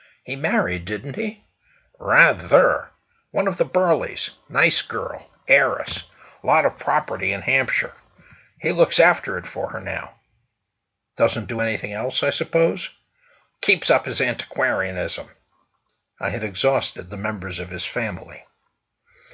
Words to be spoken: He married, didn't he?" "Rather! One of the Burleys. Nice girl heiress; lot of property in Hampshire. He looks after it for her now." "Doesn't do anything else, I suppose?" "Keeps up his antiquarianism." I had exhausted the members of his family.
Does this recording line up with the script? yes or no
yes